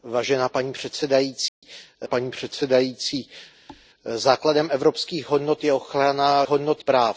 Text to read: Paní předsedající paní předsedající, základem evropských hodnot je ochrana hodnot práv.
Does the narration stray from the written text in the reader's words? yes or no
no